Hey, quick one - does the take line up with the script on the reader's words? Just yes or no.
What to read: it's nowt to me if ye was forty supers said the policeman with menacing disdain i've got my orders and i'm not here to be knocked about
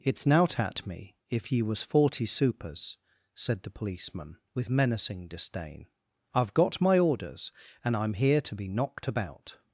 no